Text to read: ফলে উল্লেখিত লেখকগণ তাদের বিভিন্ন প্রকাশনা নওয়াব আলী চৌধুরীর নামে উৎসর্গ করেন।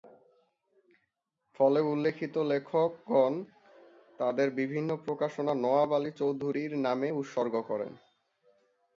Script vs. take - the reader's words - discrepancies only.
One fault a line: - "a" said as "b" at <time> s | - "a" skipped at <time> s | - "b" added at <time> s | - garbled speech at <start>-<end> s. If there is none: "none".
none